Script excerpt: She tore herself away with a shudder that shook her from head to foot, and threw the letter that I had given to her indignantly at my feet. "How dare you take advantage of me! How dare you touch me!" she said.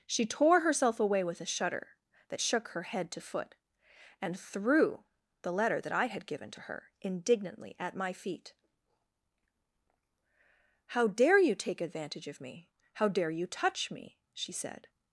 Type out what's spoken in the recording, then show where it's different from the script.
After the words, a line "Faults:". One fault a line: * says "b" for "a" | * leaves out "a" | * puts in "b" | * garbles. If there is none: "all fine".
She tore herself away with a shudder that shook her head to foot, and threw the letter that I had given to her indignantly at my feet. "How dare you take advantage of me! How dare you touch me!" she said.
Faults:
* leaves out "from"